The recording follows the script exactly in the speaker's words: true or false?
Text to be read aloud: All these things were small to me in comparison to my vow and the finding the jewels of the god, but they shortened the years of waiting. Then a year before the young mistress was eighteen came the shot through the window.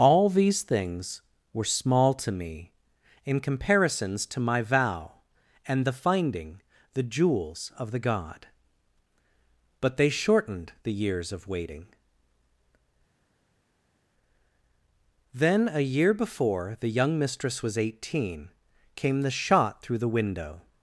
false